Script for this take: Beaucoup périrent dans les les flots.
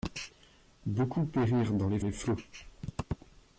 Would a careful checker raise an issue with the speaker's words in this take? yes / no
no